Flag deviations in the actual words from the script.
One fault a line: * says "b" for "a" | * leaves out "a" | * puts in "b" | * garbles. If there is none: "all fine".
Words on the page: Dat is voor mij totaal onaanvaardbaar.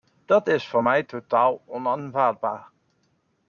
all fine